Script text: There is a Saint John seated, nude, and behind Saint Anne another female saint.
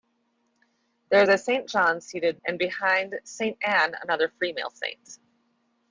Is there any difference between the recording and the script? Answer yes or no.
yes